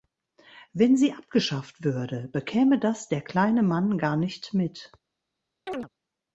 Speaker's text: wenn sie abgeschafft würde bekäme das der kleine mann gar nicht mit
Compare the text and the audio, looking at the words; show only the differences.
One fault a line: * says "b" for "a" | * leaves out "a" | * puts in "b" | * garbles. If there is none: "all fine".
all fine